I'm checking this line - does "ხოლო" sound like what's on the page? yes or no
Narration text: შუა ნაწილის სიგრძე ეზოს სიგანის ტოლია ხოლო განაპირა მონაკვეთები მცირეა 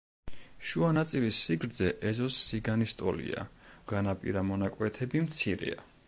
no